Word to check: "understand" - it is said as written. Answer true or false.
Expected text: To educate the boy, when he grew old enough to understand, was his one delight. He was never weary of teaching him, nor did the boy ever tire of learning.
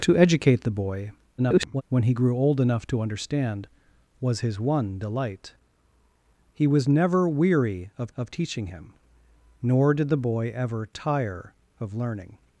true